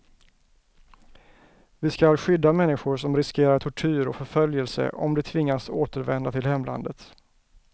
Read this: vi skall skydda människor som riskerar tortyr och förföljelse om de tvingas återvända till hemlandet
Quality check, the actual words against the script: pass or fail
pass